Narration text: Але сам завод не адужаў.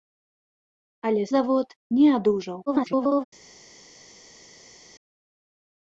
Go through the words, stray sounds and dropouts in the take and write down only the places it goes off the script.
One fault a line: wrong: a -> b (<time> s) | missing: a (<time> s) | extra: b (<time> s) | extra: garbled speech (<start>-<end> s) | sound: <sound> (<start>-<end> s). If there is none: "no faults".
missing: сам (1.2 s)
extra: garbled speech (2.7-3.2 s)